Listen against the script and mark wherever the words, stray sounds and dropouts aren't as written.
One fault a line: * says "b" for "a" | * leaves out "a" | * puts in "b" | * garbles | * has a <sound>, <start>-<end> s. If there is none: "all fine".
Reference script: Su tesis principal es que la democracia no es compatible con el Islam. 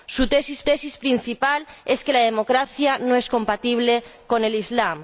* puts in "tesis"